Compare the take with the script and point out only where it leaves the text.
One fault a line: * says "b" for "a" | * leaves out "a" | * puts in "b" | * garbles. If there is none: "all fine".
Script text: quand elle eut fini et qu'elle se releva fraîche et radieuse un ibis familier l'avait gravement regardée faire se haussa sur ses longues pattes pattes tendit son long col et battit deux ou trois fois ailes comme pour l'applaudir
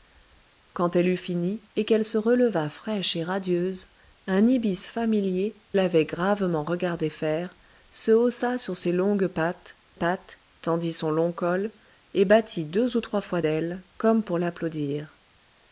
all fine